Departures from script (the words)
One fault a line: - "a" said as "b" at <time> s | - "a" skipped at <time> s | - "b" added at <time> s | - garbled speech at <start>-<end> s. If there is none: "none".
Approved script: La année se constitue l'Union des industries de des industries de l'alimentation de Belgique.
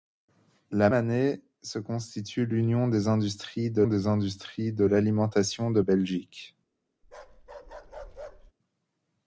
none